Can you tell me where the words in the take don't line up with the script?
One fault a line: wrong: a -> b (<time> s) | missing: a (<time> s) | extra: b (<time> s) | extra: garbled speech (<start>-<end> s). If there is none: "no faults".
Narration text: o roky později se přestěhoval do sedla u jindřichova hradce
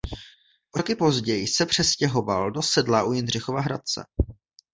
no faults